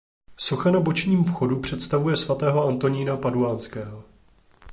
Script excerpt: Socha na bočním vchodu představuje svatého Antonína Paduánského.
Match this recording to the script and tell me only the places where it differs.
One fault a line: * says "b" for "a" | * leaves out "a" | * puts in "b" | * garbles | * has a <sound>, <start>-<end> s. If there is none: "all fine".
all fine